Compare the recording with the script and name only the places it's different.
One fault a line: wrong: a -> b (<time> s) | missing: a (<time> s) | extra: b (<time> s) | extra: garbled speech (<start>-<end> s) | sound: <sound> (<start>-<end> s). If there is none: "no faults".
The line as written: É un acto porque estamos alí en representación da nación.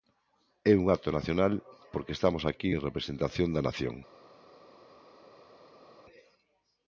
extra: nacional (1.2 s)
wrong: alí -> aquí (2.5 s)